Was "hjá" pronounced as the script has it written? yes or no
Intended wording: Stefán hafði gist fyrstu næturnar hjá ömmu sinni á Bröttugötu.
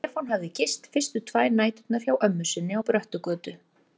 yes